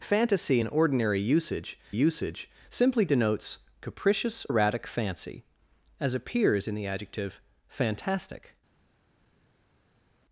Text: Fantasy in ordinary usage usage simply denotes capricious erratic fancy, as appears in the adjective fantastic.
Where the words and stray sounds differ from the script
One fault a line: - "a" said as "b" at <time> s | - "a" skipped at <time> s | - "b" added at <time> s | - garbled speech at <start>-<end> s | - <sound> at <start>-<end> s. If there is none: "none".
none